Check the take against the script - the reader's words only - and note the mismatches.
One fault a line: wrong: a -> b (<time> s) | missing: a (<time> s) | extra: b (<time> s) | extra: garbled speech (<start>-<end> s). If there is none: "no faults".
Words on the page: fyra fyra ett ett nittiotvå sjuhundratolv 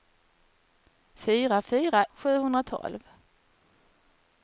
missing: ett ett nittiotvå (2.0 s)